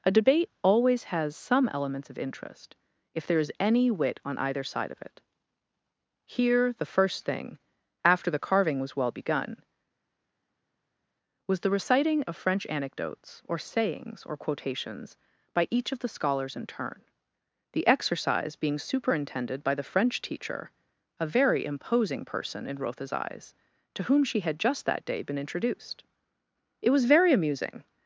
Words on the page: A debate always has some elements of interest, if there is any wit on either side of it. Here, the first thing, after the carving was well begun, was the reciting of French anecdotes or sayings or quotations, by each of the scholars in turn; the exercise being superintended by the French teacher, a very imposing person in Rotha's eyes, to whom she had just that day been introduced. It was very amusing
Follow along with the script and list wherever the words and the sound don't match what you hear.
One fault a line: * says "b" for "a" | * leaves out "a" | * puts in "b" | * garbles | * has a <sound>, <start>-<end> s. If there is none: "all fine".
all fine